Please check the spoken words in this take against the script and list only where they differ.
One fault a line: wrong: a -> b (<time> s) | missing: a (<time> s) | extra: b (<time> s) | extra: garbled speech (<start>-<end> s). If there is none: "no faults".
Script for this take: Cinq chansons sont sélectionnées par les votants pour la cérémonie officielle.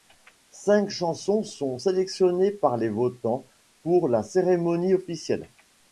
no faults